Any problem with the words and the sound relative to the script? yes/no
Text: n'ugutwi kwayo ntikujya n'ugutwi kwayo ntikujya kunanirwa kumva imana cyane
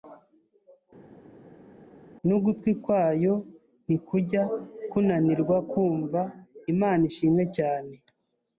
yes